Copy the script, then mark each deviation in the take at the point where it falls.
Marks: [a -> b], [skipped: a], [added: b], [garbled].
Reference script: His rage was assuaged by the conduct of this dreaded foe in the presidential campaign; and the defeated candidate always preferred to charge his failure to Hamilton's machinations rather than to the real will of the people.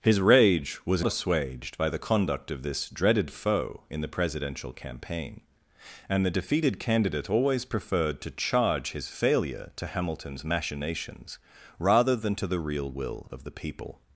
His rage was assuaged by the conduct of this dreaded foe in the presidential campaign; and the defeated candidate always preferred to charge his failure to Hamilton's machinations rather than to the real will of the people.